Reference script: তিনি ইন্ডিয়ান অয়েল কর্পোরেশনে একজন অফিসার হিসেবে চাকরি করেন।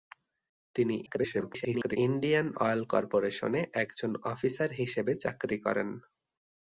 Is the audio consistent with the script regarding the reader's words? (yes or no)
no